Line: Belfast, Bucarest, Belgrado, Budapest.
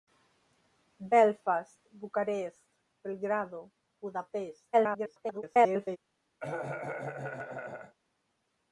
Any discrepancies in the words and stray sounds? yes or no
yes